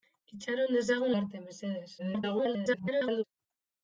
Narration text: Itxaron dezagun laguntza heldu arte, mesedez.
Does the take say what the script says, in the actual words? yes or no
no